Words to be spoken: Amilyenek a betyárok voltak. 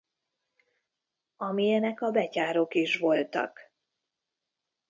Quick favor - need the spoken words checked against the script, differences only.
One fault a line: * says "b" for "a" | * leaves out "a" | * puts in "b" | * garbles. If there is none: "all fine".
* puts in "is"